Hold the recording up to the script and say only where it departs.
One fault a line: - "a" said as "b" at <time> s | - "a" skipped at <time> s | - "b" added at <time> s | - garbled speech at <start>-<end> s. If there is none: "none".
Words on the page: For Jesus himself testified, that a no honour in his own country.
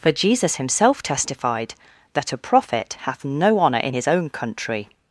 - "prophet hath" added at 2.4 s